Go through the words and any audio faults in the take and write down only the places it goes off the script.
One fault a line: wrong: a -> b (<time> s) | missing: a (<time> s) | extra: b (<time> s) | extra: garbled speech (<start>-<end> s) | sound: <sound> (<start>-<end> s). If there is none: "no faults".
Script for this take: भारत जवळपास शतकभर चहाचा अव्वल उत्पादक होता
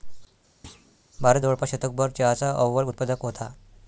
sound: thud (0.6-1.0 s)